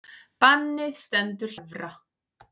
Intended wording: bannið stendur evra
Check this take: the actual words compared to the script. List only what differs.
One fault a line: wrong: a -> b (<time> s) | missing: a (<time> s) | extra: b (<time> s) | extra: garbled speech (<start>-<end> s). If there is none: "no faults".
no faults